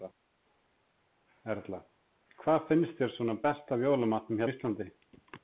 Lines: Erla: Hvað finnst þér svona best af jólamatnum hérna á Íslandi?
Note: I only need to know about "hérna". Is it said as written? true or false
false